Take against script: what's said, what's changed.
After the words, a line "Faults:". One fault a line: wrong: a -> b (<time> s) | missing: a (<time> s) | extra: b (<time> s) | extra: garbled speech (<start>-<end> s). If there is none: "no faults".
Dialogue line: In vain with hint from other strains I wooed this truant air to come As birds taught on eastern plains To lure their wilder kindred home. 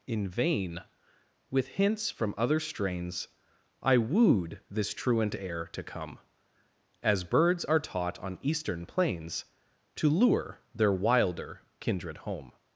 In vain with hints from other strains I wooed this truant air to come As birds are taught on eastern plains To lure their wilder kindred home.
Faults:
wrong: hint -> hints (1.7 s)
extra: are (7.7 s)